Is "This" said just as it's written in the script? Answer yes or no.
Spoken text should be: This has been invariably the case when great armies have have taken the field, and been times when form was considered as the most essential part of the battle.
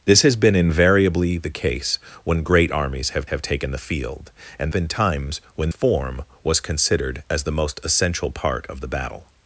yes